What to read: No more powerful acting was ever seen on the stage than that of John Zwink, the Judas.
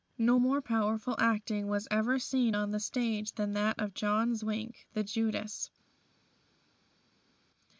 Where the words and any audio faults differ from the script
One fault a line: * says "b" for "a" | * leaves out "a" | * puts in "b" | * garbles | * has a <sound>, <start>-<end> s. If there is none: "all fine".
all fine